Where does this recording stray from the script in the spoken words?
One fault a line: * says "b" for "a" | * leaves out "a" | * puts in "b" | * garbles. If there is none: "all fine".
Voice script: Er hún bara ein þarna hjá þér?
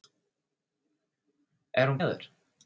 * leaves out "bara ein þarna"